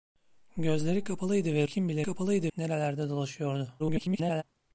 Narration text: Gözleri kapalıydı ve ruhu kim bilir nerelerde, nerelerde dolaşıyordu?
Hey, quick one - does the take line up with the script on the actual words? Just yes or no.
no